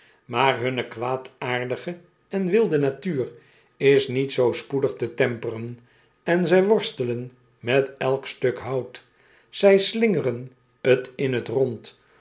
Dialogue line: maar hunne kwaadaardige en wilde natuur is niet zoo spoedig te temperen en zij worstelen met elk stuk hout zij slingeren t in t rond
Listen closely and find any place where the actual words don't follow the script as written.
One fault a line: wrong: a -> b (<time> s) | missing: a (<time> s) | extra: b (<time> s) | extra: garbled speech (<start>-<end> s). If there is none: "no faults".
no faults